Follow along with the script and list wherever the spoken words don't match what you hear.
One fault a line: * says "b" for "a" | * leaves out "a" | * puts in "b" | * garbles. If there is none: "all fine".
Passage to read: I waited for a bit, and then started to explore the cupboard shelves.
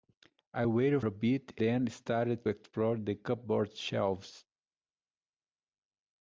* leaves out "for"
* leaves out "and"
* leaves out "to"